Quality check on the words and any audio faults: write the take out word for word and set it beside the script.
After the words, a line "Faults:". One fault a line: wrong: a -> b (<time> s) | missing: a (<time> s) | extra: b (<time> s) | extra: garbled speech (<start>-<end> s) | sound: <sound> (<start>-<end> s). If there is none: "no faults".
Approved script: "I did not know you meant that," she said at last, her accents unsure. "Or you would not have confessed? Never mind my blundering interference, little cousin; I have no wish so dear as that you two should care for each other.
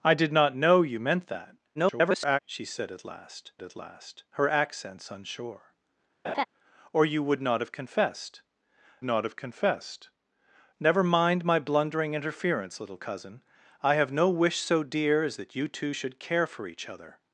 "I did not know you meant that," [garbled] she said at last at last, her accents unsure. "Or you would not have confessed not have confessed? Never mind my blundering interference, little cousin; I have no wish so dear as that you two should care for each other.
Faults:
extra: garbled speech (1.7-2.4 s)
extra: at last (3.6 s)
sound: laugh (6.2-6.5 s)
extra: not have confessed (9.0 s)